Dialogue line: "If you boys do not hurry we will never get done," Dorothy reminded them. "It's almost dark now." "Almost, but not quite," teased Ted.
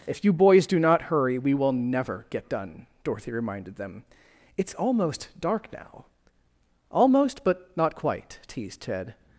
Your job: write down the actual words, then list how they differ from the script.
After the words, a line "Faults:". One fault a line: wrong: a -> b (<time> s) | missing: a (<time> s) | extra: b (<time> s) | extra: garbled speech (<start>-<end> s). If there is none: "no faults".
"If you boys do not hurry we will never get done," Dorothy reminded them. "It's almost dark now." "Almost, but not quite," teased Ted.
Faults:
no faults